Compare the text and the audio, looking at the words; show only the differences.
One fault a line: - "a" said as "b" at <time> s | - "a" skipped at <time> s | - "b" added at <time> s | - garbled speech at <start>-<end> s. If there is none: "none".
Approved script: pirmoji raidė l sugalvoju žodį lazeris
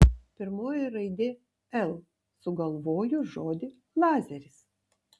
none